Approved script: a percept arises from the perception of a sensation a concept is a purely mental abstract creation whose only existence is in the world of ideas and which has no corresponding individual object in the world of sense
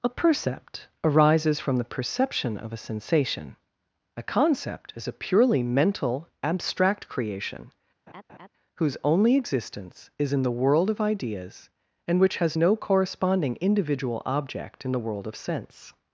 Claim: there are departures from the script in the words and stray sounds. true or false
true